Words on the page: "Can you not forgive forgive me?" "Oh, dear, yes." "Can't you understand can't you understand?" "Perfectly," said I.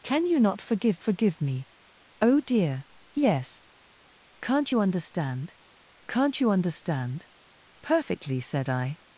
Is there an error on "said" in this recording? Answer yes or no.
no